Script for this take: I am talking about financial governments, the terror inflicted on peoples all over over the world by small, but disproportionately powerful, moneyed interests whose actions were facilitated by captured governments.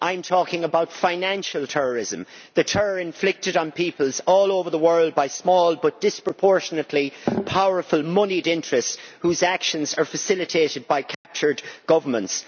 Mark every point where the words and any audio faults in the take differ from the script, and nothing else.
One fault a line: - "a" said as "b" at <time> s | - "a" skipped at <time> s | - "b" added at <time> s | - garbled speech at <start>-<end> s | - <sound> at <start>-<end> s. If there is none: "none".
- "governments" said as "terrorism" at 1.7 s
- "over" skipped at 4.7 s
- "were" said as "are" at 9.9 s
- dropout at 11.1-11.2 s